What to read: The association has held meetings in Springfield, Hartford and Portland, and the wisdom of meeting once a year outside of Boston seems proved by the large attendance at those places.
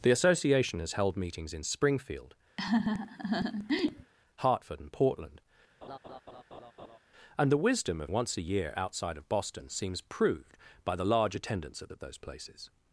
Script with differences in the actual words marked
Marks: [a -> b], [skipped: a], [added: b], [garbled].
The association has held meetings in Springfield, Hartford and Portland, and the wisdom of [skipped: meeting] once a year outside of Boston seems proved by the large attendance at [added: at] those places.